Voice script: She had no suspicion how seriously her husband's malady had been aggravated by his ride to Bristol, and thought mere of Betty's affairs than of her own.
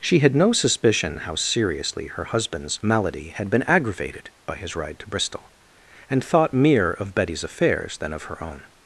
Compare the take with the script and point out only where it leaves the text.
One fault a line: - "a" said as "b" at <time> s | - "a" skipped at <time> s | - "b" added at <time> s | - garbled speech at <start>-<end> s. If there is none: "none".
none